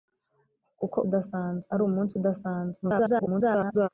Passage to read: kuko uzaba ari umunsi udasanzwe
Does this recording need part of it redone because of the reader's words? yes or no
yes